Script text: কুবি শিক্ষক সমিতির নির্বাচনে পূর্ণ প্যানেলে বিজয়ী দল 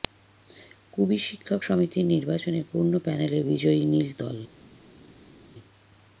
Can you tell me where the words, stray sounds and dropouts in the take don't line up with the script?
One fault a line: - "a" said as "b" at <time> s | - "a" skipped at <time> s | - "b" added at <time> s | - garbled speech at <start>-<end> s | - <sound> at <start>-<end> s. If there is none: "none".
- "নীল" added at 3.9 s